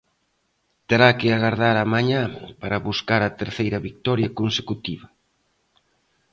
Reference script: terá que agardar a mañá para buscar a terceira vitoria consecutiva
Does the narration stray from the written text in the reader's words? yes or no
no